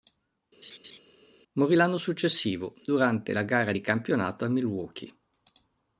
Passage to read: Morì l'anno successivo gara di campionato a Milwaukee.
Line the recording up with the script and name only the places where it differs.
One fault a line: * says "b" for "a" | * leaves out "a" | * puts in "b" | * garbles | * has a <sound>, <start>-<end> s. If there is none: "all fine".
* has a laugh, 0.6-1.0 s
* puts in "durante la"